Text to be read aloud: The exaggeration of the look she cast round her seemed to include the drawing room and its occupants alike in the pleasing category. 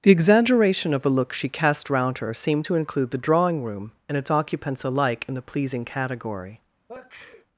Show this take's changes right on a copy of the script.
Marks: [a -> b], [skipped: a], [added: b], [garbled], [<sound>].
The exaggeration of [the -> a] look she cast round her seemed to include the drawing room and its occupants alike in the pleasing category. [sneeze]